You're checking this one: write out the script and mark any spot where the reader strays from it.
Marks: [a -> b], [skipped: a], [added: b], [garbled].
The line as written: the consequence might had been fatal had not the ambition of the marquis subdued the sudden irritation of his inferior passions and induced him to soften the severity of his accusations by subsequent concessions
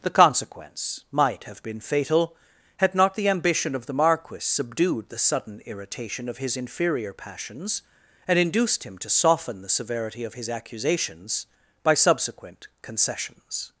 the consequence might [had -> have] been fatal had not the ambition of the marquis subdued the sudden irritation of his inferior passions and induced him to soften the severity of his accusations by subsequent concessions